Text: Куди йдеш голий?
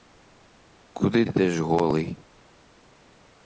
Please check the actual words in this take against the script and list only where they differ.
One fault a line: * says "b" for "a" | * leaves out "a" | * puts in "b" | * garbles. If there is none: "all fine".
all fine